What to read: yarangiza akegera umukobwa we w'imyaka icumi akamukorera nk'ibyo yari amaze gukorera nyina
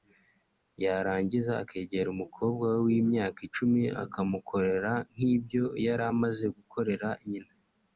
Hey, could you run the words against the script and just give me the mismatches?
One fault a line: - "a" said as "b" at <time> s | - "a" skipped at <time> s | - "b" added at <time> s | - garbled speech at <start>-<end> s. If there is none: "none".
none